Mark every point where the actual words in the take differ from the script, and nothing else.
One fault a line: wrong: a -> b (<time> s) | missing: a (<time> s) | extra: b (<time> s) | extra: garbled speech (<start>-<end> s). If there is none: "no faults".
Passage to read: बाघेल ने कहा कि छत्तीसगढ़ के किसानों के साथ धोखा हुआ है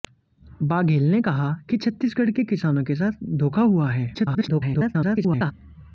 extra: garbled speech (4.1-5.5 s)